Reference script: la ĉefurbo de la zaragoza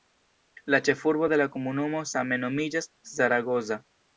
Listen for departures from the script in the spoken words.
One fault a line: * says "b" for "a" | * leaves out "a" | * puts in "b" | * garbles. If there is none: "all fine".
* puts in "komunumo same nomiĝas"